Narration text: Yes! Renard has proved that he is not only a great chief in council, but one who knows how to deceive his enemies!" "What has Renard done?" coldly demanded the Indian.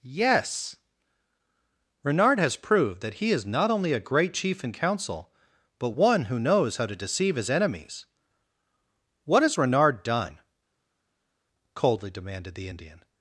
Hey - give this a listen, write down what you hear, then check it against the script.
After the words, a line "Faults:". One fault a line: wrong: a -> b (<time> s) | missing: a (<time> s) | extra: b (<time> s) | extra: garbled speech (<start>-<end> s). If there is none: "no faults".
Yes! Renard has proved that he is not only a great chief in council, but one who knows how to deceive his enemies!" "What has Renard done?" coldly demanded the Indian.
Faults:
no faults